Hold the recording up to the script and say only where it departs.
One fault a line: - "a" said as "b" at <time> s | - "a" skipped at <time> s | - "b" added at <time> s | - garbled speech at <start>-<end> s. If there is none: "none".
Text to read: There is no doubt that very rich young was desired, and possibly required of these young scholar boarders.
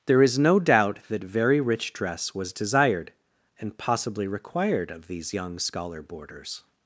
- "young" said as "dress" at 1.9 s